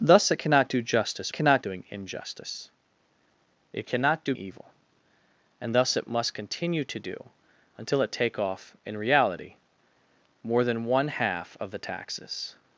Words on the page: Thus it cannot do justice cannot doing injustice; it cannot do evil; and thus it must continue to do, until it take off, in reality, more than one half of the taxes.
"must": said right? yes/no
yes